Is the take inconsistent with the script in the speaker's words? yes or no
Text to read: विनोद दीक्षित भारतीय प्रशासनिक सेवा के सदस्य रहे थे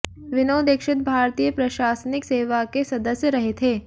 no